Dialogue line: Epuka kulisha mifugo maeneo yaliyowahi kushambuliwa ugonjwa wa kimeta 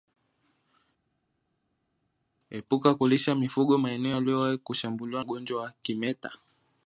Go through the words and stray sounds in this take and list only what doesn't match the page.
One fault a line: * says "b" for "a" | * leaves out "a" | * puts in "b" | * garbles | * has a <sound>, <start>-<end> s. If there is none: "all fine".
all fine